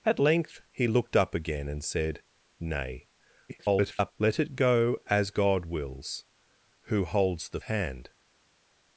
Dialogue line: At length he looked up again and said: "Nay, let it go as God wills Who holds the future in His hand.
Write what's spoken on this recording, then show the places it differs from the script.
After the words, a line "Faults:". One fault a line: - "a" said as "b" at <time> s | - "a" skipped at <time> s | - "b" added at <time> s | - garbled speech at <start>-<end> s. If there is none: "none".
At length he looked up again and said: "Nay, [garbled] let it go as God wills Who holds the hand.
Faults:
- garbled speech at 3.5-4.1 s
- "future in His" skipped at 7.6 s